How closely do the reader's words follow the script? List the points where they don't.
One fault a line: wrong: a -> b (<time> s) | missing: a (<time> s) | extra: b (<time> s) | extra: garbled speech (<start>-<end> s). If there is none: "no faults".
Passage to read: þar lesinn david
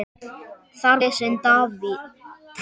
no faults